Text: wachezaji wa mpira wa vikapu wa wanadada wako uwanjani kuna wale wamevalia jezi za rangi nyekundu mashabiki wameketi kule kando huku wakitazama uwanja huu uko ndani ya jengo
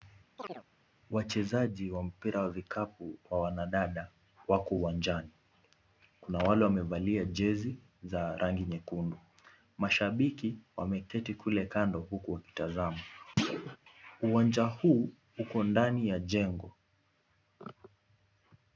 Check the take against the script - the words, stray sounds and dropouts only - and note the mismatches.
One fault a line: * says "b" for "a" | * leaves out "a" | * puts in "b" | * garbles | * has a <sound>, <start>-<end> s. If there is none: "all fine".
* has a chirp, 0.4-0.6 s
* has a thud, 13.4-13.8 s